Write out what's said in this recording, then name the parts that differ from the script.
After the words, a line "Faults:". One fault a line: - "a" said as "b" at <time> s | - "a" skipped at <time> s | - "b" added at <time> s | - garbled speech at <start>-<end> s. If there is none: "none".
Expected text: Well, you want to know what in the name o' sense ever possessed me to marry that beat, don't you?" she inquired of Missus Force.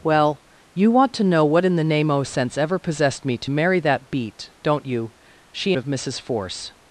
Well, you want to know what in the name o' sense ever possessed me to marry that beat, don't you?" she of Missus Force.
Faults:
- "inquired" skipped at 5.7 s